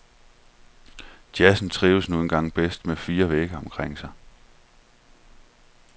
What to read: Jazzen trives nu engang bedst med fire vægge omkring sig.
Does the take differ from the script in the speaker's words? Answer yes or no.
no